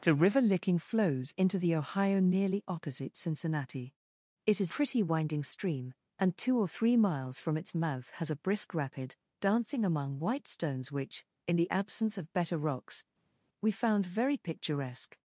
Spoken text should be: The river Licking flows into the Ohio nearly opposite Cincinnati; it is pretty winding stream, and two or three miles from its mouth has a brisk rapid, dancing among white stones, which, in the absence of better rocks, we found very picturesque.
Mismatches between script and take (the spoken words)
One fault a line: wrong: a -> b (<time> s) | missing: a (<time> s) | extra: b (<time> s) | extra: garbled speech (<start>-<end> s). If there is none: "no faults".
no faults